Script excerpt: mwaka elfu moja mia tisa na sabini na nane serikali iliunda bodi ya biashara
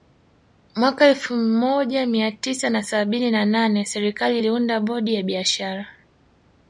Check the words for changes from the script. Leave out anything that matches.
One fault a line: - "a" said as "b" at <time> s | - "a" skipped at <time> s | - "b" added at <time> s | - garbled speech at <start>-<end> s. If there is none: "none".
none